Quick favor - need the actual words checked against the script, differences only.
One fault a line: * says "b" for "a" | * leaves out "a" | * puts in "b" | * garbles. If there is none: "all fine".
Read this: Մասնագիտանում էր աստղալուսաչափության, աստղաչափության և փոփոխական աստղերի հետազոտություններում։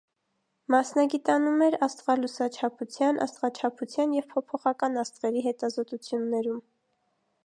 all fine